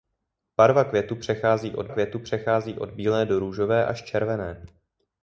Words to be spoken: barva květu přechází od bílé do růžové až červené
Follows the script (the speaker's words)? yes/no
no